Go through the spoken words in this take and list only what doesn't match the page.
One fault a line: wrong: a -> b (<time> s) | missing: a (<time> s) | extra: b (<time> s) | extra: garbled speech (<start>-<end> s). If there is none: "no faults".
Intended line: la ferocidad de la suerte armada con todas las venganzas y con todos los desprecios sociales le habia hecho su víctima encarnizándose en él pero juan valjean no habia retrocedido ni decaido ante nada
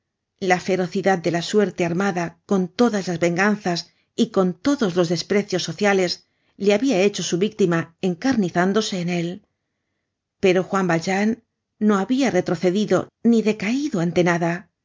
no faults